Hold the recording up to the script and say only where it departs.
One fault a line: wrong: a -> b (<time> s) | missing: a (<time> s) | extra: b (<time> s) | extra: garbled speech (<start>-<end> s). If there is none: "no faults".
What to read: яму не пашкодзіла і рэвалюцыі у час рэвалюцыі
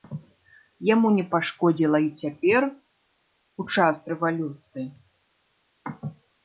wrong: рэвалюцыі -> цяпер (2.2 s)